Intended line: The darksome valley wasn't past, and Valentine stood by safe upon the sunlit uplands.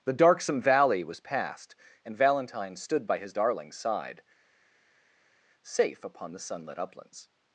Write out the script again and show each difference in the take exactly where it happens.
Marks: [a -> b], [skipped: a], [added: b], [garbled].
The darksome valley [wasn't -> was] past, and Valentine stood by [added: his darling's side] safe upon the sunlit uplands.